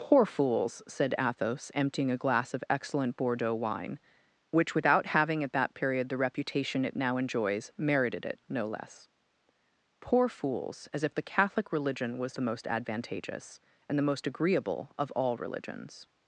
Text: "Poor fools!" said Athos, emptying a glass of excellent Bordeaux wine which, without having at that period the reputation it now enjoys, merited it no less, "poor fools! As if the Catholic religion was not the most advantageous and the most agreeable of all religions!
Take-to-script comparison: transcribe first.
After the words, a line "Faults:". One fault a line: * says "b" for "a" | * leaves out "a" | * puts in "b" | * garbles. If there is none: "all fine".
"Poor fools!" said Athos, emptying a glass of excellent Bordeaux wine which, without having at that period the reputation it now enjoys, merited it no less, "poor fools! As if the Catholic religion was the most advantageous and the most agreeable of all religions!
Faults:
* leaves out "not"